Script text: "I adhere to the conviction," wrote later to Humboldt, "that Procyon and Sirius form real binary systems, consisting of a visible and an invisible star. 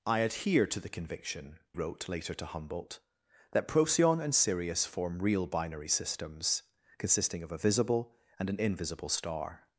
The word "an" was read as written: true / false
true